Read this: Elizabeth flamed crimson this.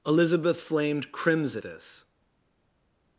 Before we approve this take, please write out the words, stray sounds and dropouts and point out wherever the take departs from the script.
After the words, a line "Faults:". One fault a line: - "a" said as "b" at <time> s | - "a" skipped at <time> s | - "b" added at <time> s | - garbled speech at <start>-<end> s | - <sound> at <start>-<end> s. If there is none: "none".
Elizabeth flamed crimson this.
Faults:
none